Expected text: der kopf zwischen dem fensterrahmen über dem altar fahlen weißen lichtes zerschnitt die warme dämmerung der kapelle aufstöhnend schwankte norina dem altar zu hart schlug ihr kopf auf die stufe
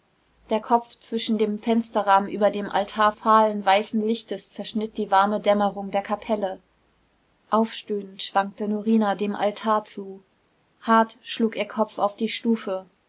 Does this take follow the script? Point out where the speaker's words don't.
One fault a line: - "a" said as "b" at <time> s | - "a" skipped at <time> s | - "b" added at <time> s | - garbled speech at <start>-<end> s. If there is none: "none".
none